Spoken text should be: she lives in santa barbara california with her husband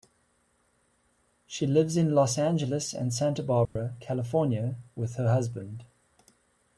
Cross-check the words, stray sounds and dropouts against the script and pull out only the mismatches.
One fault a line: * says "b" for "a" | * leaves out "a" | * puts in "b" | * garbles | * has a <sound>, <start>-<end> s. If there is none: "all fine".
* puts in "los angeles and"
* has a dropout, 3.7-3.8 s